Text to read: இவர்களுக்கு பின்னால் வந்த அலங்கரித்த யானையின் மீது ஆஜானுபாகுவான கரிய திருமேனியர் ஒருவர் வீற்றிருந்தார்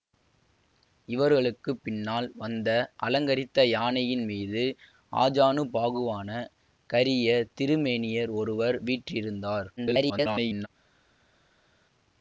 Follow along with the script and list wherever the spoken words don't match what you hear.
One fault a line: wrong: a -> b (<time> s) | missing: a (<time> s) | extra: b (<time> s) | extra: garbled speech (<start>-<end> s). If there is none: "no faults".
extra: garbled speech (9.8-10.7 s)